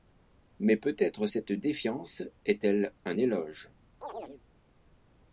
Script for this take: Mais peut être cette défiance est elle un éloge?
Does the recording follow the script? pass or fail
pass